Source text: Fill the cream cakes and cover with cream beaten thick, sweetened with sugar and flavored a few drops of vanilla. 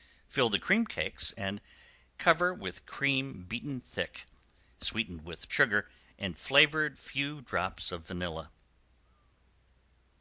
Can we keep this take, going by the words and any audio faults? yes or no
yes